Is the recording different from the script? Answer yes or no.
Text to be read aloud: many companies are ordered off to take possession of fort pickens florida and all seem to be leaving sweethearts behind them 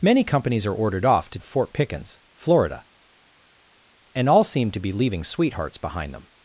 yes